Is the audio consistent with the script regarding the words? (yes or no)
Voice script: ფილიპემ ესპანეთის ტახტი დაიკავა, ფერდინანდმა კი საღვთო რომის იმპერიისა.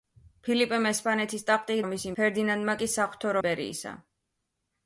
no